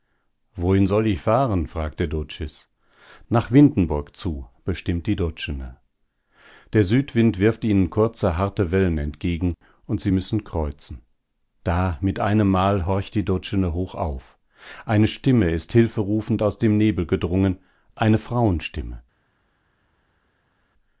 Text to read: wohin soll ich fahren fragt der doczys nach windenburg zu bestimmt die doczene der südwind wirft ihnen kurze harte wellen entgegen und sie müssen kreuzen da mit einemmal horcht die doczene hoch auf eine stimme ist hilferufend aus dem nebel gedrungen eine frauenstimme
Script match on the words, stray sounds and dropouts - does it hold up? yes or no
yes